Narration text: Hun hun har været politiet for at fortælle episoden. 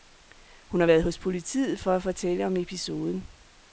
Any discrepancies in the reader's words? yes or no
yes